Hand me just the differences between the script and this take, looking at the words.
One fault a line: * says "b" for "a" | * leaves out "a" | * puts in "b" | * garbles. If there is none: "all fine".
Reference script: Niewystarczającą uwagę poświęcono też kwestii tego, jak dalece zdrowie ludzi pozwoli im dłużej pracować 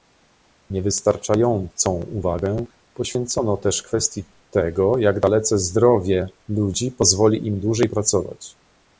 all fine